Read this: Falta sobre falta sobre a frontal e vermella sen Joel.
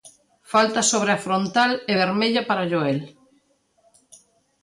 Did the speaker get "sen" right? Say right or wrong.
wrong